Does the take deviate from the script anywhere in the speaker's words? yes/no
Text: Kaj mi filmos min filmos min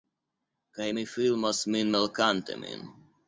yes